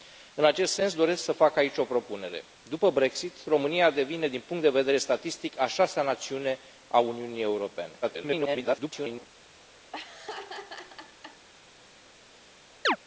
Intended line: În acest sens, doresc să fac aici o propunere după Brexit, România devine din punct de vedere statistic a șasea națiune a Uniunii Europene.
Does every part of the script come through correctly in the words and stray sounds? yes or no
no